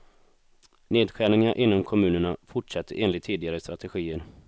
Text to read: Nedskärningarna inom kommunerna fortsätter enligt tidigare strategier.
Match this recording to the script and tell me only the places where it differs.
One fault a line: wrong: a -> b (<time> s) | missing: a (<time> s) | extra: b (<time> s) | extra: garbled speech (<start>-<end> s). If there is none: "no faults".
no faults